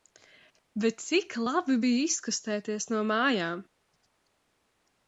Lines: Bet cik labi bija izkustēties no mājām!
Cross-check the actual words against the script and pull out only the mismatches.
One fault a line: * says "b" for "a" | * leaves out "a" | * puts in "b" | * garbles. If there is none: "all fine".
all fine